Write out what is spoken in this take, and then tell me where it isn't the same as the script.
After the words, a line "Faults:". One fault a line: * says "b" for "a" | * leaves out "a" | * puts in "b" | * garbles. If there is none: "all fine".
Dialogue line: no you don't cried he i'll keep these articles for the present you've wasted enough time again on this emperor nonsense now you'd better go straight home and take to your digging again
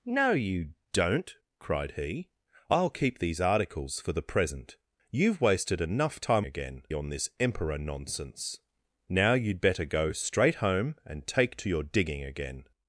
no you don't cried he i'll keep these articles for the present you've wasted enough time again on this emperor nonsense now you'd better go straight home and take to your digging again
Faults:
all fine